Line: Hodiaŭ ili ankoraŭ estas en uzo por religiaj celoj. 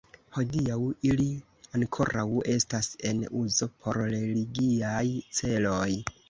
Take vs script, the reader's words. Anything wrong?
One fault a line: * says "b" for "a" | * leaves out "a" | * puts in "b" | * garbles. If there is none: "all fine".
all fine